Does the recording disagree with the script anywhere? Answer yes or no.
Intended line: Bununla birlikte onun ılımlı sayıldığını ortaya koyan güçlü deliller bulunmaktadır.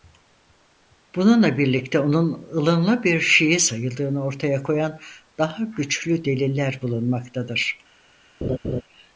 yes